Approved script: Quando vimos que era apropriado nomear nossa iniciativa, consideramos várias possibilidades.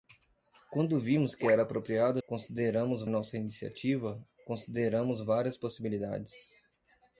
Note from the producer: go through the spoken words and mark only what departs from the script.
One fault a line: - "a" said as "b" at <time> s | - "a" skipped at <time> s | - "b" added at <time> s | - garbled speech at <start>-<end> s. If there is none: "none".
- "nomear" said as "consideramos" at 2.3 s